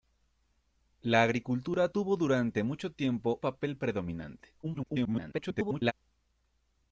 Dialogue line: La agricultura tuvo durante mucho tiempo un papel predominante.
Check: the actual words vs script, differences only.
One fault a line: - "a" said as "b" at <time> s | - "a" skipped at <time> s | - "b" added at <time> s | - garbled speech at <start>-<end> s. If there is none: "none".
- "un" skipped at 3.4 s
- garbled speech at 4.6-5.9 s